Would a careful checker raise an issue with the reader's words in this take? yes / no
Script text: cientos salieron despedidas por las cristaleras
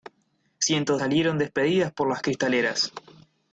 no